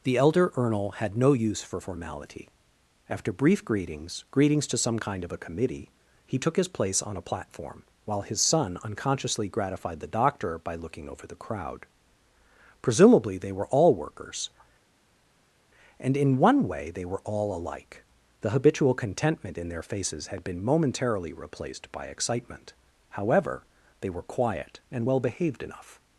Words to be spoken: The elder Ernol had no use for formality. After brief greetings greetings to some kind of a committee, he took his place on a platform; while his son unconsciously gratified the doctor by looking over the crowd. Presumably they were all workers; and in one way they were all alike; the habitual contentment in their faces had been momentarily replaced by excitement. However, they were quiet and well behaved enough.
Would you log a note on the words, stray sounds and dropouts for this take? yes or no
no